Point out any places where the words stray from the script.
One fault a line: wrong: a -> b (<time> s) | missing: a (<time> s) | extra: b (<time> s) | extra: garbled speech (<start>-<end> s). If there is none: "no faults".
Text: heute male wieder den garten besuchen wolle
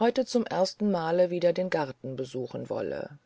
extra: zum ersten (0.2 s)